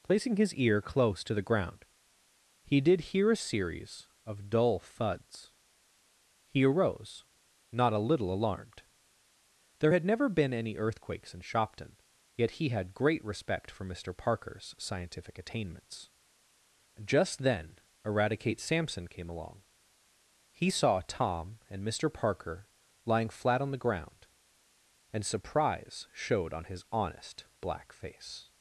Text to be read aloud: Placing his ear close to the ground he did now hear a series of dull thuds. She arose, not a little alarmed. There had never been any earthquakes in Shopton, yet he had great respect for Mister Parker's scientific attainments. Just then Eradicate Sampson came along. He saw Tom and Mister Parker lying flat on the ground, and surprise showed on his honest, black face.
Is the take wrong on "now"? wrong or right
wrong